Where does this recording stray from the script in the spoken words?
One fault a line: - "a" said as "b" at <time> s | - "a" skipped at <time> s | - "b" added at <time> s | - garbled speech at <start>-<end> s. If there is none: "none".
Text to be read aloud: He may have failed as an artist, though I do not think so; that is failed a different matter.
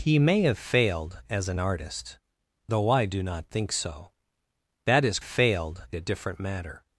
none